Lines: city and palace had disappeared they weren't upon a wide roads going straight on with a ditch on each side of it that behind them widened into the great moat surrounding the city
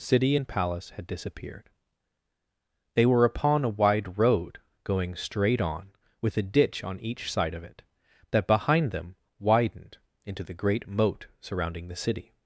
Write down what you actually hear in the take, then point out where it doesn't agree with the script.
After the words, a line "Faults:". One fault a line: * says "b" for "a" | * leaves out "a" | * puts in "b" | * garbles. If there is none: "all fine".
city and palace had disappeared they were upon a wide road going straight on with a ditch on each side of it that behind them widened into the great moat surrounding the city
Faults:
* says "were" for "weren't"
* says "road" for "roads"